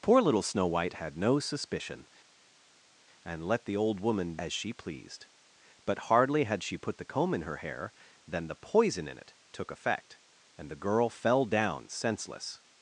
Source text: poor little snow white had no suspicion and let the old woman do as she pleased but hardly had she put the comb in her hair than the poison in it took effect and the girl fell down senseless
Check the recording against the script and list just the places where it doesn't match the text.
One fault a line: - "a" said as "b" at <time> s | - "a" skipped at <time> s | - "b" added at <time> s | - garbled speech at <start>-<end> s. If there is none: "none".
- "do" skipped at 4.4 s